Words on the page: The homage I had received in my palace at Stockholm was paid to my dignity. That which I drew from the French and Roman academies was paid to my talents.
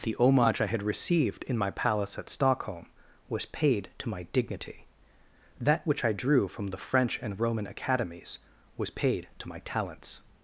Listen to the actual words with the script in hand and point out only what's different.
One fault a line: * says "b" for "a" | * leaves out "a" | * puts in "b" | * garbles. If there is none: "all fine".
all fine